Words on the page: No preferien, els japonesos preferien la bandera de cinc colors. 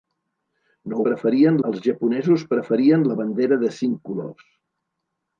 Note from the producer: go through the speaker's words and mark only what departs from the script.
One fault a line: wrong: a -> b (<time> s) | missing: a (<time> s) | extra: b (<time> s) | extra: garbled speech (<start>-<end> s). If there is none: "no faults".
no faults